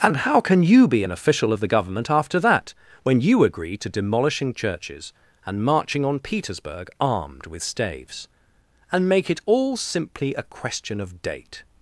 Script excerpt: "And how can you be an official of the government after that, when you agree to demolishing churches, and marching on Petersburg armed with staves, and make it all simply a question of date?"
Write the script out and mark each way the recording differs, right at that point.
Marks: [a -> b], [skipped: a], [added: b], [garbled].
"And how can you be an official of the government after that, when you agree to demolishing churches, and marching on Petersburg armed with staves, and make it all simply a question of date?"